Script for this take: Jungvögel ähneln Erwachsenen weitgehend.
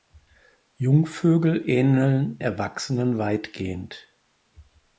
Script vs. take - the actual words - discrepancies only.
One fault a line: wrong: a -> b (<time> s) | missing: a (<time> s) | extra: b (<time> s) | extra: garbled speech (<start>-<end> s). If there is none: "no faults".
no faults